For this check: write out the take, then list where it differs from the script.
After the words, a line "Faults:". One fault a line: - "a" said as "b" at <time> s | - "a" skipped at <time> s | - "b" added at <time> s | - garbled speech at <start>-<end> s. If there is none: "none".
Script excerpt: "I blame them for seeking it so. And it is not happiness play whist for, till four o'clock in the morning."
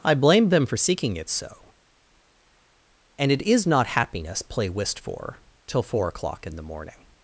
"I blame them for seeking it so. And it is not happiness play whist for, till four o'clock in the morning."
Faults:
none